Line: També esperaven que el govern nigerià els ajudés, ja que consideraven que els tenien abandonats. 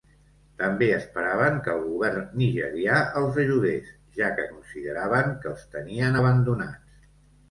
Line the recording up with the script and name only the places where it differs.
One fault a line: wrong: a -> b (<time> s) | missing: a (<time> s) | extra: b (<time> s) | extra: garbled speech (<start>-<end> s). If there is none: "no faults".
no faults